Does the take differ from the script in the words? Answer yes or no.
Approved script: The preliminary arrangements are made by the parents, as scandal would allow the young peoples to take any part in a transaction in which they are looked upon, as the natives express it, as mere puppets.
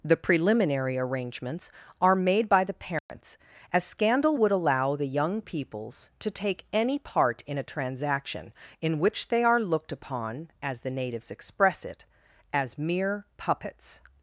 no